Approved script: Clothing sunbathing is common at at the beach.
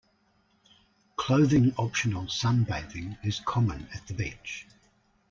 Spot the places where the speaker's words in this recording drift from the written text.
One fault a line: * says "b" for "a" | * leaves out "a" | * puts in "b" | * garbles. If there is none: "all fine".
* puts in "optional"
* leaves out "at"